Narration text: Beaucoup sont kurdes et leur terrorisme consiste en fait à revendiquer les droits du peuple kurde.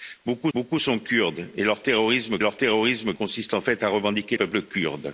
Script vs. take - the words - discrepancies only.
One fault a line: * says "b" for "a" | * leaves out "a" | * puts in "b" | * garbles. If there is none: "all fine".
* puts in "beaucoup"
* puts in "leur terrorisme"
* leaves out "les droits du"